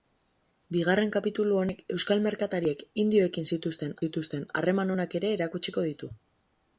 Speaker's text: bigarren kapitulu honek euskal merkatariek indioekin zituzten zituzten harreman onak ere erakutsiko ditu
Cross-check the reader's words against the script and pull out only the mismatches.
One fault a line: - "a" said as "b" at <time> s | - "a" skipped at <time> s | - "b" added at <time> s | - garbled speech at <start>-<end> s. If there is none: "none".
none